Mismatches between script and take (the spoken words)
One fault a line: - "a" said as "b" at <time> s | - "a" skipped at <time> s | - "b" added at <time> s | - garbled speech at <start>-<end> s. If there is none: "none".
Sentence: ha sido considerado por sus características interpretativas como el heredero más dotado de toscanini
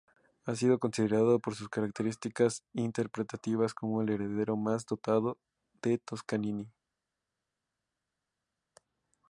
none